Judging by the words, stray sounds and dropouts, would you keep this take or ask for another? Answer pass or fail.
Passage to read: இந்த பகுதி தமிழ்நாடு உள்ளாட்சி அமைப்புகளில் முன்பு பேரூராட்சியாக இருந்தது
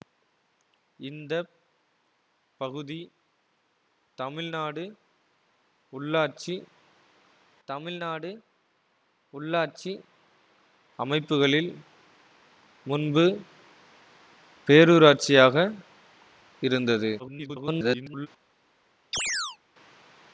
fail